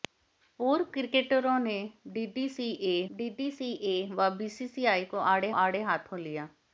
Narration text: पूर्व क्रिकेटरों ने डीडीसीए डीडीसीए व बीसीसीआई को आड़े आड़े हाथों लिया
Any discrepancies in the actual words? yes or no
no